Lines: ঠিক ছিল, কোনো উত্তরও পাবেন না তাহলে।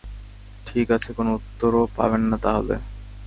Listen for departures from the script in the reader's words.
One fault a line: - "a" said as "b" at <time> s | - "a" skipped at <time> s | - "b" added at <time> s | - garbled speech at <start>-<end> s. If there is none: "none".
- "ছিল" said as "আছে" at 0.9 s